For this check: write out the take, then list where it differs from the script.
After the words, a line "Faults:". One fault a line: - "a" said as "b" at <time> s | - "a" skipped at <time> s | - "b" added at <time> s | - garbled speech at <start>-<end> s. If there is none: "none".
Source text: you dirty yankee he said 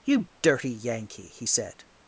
you dirty yankee he said
Faults:
none